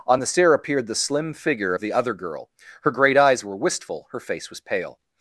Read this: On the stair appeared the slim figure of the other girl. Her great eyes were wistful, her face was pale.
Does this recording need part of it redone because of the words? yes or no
no